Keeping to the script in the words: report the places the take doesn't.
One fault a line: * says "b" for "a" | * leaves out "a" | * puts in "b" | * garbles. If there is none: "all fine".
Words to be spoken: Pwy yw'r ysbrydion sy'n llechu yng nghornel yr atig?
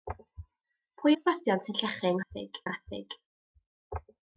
* leaves out "yw'r"
* says "atig" for "nghornel"